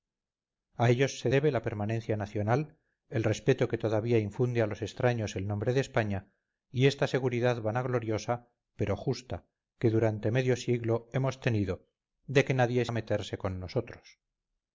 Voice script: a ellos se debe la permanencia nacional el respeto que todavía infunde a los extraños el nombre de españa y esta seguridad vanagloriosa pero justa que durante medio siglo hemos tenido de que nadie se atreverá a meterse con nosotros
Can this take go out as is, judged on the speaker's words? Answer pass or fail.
fail